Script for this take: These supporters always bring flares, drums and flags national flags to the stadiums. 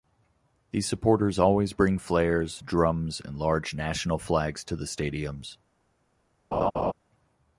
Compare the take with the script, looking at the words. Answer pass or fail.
fail